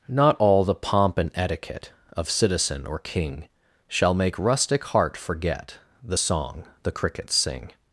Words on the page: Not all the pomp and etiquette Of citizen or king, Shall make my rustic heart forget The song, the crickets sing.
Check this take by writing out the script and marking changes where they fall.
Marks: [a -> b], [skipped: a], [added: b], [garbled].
Not all the pomp and etiquette Of citizen or king, Shall make [skipped: my] rustic heart forget The song, the crickets sing.